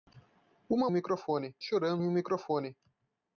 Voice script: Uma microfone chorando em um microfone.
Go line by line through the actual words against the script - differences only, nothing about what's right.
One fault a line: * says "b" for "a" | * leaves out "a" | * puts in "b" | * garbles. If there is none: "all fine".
all fine